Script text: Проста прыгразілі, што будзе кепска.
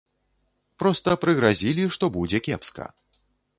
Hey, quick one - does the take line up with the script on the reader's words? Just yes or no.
yes